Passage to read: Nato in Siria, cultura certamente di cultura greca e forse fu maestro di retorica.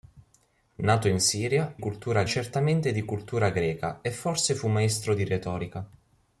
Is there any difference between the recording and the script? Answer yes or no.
no